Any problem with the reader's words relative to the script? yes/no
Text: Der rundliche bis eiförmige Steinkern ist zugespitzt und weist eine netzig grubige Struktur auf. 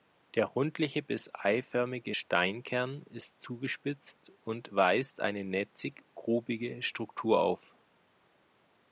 no